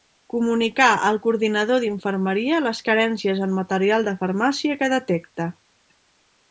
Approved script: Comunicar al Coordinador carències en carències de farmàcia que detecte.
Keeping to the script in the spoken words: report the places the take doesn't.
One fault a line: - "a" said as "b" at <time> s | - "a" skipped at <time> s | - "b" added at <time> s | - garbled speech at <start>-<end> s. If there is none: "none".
- "d'Infermeria les" added at 1.8 s
- "carències" said as "material" at 3.6 s